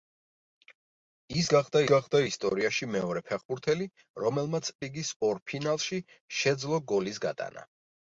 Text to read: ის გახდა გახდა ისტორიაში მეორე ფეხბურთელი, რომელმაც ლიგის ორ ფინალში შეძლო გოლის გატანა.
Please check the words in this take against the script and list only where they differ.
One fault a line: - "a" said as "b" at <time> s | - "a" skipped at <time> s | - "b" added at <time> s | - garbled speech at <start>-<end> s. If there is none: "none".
none